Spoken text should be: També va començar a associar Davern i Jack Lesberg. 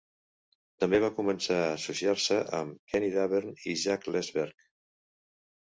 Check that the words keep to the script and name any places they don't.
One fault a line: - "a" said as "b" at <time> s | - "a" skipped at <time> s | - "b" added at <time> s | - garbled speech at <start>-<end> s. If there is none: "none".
- "se amb Kenny" added at 2.2 s